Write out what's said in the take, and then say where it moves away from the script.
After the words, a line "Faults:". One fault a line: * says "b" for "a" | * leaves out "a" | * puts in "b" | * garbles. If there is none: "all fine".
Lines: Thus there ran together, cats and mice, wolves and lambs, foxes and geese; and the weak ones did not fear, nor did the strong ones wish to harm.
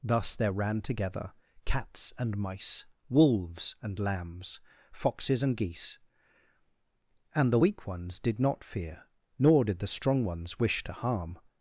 Thus there ran together, cats and mice, wolves and lambs, foxes and geese; and the weak ones did not fear, nor did the strong ones wish to harm.
Faults:
all fine